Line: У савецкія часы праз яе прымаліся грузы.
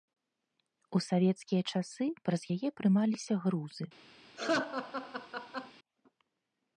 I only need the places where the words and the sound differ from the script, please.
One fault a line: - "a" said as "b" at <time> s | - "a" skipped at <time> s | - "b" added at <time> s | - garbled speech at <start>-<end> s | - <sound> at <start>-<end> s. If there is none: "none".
- laugh at 4.4-5.7 s